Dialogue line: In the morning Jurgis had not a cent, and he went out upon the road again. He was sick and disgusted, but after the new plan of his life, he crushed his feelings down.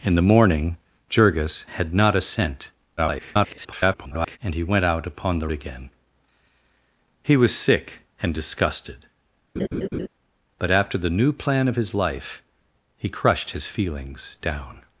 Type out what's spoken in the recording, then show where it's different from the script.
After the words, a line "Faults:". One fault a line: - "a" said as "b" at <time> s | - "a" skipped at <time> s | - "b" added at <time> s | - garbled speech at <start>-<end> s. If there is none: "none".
In the morning Jurgis had not a cent, [garbled] and he went out upon the again. He was sick and disgusted, but after the new plan of his life, he crushed his feelings down.
Faults:
- garbled speech at 3.0-4.4 s
- "road" skipped at 5.5 s